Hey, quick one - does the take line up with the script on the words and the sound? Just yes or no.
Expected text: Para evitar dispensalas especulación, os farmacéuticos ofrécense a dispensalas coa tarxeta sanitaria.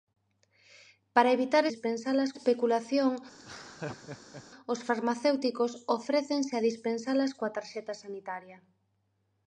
no